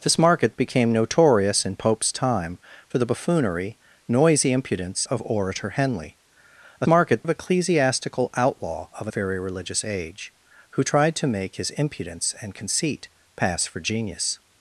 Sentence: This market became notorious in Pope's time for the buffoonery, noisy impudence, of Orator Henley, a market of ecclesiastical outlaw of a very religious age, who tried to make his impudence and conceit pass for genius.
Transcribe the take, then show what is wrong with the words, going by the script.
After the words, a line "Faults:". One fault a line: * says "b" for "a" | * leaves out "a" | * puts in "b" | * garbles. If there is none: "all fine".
This market became notorious in Pope's time for the buffoonery, noisy impudence, of Orator Henley, a market of ecclesiastical outlaw of a very religious age, who tried to make his impudence and conceit pass for genius.
Faults:
all fine